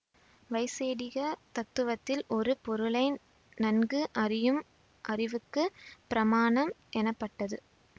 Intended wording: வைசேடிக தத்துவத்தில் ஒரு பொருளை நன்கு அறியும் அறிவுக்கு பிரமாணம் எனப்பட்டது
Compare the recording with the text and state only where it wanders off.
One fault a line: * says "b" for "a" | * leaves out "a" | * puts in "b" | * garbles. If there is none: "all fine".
all fine